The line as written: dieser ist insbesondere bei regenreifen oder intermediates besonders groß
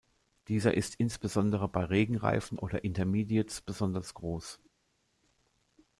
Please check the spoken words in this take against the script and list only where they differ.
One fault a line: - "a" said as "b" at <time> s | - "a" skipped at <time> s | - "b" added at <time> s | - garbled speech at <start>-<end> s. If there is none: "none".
none